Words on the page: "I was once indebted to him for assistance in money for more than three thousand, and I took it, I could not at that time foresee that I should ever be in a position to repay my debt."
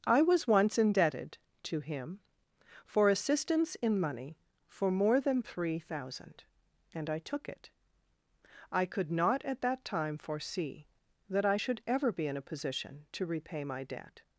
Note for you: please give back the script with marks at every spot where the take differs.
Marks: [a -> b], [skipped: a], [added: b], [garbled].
"I was once indebted to him for assistance in money for more than three thousand, and I took it, I could not at that time foresee that I should ever be in a position to repay my debt."